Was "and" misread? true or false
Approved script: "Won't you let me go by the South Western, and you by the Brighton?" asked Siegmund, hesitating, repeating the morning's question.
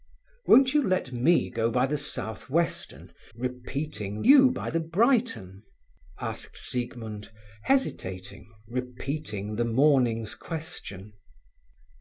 true